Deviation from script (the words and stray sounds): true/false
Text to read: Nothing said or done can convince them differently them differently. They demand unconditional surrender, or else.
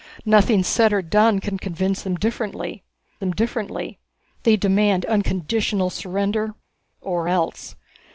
false